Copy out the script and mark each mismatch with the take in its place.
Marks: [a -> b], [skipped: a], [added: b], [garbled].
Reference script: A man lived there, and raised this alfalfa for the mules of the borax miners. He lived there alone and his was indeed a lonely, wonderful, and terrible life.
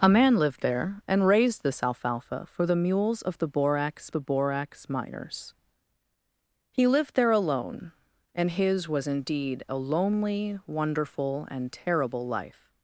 A man lived there, and raised this alfalfa for the mules of the borax [added: the borax] miners. He lived there alone and his was indeed a lonely, wonderful, and terrible life.